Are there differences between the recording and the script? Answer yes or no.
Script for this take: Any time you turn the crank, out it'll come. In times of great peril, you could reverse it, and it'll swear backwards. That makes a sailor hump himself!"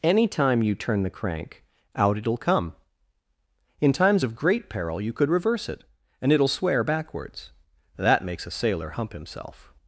no